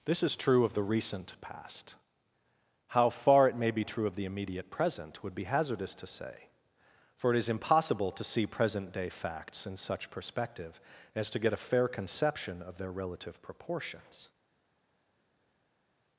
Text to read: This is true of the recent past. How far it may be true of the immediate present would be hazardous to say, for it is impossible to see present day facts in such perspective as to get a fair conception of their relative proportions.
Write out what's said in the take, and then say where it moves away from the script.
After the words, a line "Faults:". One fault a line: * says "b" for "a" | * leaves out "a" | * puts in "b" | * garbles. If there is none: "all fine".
This is true of the recent past. How far it may be true of the immediate present would be hazardous to say, for it is impossible to see present day facts in such perspective as to get a fair conception of their relative proportions.
Faults:
all fine